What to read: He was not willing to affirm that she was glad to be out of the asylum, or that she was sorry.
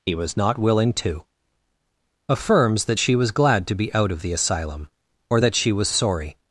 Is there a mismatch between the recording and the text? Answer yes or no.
yes